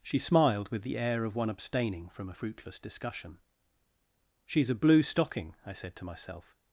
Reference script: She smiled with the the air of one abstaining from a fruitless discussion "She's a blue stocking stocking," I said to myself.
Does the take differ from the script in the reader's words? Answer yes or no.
yes